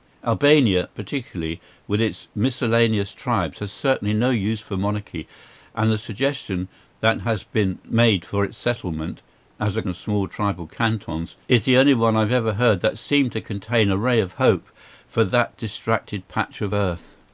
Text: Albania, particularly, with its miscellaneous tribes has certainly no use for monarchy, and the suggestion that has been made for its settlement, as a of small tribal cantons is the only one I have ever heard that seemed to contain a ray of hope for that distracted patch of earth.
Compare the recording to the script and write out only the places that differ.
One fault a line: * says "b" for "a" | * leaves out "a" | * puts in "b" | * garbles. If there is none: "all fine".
all fine